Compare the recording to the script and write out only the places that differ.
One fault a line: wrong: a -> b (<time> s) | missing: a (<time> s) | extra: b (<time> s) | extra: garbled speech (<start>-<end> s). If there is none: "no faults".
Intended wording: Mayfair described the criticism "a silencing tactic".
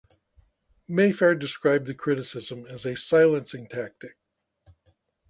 extra: as (2.6 s)